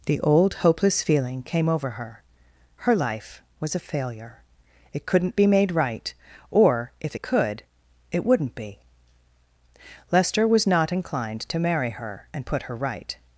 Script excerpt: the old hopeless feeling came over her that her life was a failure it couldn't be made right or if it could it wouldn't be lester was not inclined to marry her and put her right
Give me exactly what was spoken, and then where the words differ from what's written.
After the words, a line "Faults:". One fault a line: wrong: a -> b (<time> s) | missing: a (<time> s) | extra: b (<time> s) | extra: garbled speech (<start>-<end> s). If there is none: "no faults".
the old hopeless feeling came over her her life was a failure it couldn't be made right or if it could it wouldn't be lester was not inclined to marry her and put her right
Faults:
missing: that (2.2 s)